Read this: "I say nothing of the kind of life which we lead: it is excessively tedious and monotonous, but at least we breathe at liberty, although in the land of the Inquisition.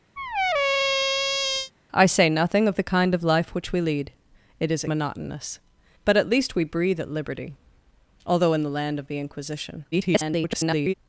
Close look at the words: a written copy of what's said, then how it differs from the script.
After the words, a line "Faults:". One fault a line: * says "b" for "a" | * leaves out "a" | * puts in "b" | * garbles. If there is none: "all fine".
"I say nothing of the kind of life which we lead: it is monotonous, but at least we breathe at liberty, although in the land of the Inquisition. [garbled]
Faults:
* leaves out "excessively tedious and"
* garbles